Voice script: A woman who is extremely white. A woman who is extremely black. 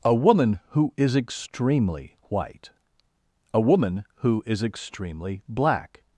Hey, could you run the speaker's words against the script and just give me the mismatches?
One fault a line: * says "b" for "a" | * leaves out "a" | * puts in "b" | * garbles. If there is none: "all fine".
all fine